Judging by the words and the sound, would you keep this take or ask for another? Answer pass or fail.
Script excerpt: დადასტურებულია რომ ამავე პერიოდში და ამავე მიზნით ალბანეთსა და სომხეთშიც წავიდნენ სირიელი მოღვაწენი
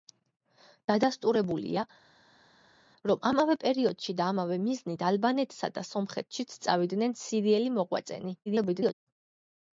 fail